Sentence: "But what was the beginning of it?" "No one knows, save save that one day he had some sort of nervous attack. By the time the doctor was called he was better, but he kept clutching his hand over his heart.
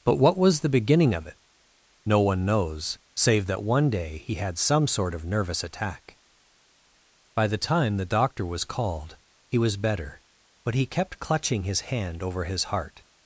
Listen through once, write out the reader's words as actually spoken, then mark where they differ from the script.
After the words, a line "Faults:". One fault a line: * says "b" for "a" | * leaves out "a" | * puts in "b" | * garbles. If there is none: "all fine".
"But what was the beginning of it?" "No one knows, save that one day he had some sort of nervous attack. By the time the doctor was called he was better, but he kept clutching his hand over his heart.
Faults:
* leaves out "save"